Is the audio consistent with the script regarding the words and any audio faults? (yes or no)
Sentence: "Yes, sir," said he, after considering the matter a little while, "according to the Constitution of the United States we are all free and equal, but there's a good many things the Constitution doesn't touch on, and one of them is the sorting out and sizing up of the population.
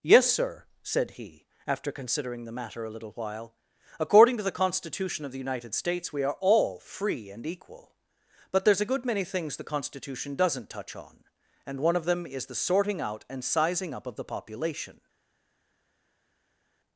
yes